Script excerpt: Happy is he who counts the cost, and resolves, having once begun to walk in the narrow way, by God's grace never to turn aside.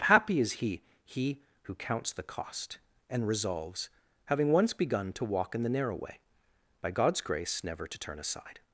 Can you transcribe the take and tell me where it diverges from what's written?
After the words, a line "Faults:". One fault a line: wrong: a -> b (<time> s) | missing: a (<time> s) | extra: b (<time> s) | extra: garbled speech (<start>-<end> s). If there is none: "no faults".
Happy is he he who counts the cost, and resolves, having once begun to walk in the narrow way, by God's grace never to turn aside.
Faults:
extra: he (1.1 s)